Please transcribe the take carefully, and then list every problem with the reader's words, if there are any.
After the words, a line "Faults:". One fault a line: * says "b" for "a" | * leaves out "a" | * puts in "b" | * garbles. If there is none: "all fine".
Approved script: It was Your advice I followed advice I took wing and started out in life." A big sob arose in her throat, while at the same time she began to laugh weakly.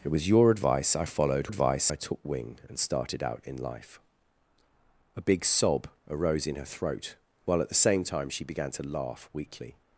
It was Your advice I followed advice I took wing and started out in life." A big sob arose in her throat, while at the same time she began to laugh weakly.
Faults:
all fine